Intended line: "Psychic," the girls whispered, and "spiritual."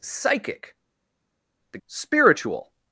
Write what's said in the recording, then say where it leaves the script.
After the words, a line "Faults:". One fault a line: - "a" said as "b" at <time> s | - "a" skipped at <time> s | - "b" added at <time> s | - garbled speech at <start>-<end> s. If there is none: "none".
"Psychic," the "spiritual."
Faults:
- "girls whispered and" skipped at 1.8 s